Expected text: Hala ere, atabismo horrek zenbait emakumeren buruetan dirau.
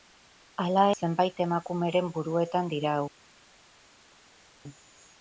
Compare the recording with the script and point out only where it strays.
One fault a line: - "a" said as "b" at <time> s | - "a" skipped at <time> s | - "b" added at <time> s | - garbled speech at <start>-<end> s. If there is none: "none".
- "ere atabismo horrek" skipped at 0.8 s